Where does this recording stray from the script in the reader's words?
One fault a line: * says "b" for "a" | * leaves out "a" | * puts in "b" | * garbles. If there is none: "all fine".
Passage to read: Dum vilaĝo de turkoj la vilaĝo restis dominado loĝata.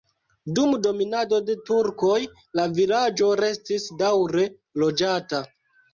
* says "dominado" for "vilaĝo"
* says "daŭre" for "dominado"